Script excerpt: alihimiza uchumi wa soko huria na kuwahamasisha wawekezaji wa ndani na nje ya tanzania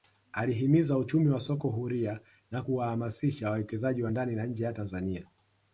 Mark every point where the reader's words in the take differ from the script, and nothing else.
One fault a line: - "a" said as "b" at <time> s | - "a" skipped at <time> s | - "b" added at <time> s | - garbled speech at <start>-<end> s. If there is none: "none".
none